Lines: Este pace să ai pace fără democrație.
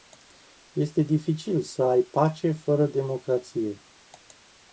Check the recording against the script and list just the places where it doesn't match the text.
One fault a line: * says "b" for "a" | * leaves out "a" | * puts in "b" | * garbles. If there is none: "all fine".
* says "dificil" for "pace"